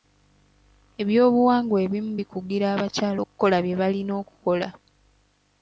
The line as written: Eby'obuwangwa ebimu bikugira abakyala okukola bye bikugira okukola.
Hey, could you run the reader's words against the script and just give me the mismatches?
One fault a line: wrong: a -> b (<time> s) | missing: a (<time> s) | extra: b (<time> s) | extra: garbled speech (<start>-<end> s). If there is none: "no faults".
wrong: bikugira -> balina (3.8 s)